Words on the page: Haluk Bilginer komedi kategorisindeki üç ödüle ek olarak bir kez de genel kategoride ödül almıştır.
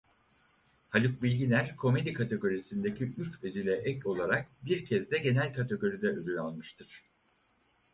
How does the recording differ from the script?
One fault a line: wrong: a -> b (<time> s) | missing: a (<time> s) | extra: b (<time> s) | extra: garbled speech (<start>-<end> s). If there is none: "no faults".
no faults